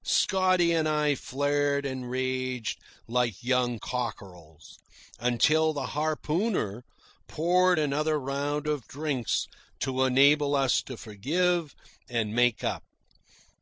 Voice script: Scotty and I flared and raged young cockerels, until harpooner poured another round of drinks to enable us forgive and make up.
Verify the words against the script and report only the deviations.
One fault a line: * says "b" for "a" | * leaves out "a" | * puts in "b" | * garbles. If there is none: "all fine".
* puts in "like"
* puts in "the"
* puts in "to"